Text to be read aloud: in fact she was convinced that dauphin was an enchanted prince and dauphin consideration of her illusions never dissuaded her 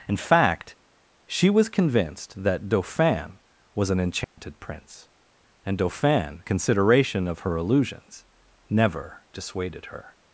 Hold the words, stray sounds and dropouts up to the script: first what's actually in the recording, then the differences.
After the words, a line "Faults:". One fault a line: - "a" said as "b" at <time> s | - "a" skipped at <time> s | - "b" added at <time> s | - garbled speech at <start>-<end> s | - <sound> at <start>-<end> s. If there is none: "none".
in fact she was convinced that dauphin was an enchanted prince and dauphin consideration of her illusions never dissuaded her
Faults:
- dropout at 4.2-4.4 s